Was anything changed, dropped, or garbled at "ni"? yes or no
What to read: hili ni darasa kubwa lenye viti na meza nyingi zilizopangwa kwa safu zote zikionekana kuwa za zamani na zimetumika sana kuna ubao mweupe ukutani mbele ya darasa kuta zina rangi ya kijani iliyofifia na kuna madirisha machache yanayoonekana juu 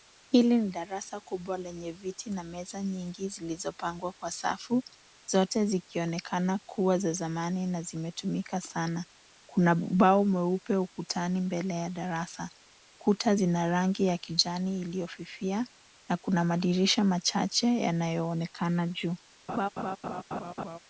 no